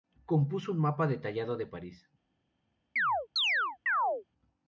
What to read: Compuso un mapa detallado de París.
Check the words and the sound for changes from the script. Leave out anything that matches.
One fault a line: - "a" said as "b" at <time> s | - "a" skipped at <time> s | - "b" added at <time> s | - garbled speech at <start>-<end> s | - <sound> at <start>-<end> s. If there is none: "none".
- chirp at 3.0-4.2 s